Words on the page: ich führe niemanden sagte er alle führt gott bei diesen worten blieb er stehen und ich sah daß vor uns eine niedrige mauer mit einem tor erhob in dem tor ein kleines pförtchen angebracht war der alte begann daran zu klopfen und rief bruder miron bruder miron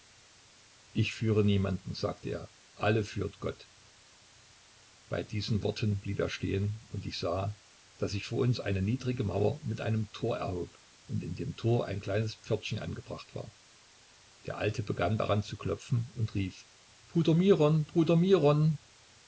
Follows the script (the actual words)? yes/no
no